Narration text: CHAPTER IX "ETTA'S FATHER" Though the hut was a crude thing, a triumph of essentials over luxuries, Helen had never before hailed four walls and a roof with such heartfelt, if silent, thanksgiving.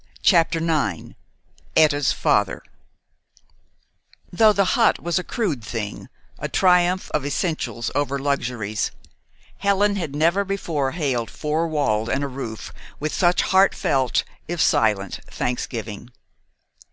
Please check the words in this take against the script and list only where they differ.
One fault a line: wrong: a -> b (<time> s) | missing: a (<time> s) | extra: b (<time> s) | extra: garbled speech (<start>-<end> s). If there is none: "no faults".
no faults